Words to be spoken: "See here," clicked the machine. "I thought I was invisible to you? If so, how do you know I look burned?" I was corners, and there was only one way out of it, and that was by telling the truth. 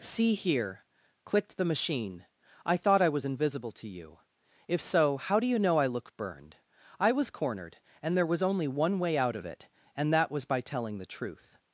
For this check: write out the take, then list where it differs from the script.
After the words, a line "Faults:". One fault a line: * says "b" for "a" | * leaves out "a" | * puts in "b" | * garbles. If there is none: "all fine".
"See here," clicked the machine. "I thought I was invisible to you? If so, how do you know I look burned?" I was cornered, and there was only one way out of it, and that was by telling the truth.
Faults:
* says "cornered" for "corners"